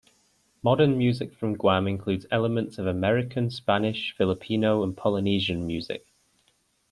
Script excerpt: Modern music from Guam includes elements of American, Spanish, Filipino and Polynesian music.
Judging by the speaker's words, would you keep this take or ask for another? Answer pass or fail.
pass